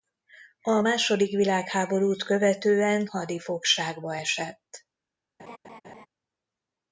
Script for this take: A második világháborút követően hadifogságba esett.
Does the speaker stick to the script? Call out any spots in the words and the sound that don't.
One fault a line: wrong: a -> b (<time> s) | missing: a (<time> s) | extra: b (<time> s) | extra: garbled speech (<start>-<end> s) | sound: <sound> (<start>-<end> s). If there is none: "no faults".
sound: laugh (5.4-6.1 s)